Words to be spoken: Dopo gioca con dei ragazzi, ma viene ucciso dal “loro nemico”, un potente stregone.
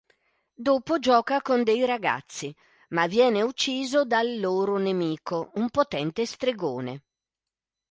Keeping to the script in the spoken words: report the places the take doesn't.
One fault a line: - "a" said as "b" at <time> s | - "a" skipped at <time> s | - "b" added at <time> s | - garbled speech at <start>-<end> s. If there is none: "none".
none